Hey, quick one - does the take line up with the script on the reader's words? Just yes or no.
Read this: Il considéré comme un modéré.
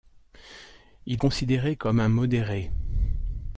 yes